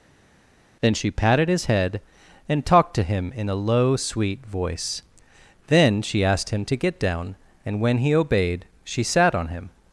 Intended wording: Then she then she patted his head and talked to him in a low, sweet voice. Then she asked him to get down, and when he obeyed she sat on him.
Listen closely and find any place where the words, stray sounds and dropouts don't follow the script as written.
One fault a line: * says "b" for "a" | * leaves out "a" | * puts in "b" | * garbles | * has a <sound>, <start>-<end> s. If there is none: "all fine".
* leaves out "then she"